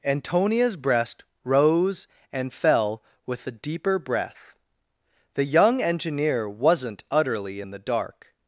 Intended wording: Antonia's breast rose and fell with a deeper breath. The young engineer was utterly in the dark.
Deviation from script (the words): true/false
true